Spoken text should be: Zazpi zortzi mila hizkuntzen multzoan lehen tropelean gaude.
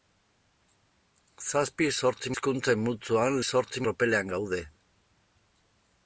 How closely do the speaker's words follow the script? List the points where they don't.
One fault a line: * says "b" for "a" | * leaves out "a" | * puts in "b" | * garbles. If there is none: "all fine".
* leaves out "mila"
* says "zortzi" for "lehen"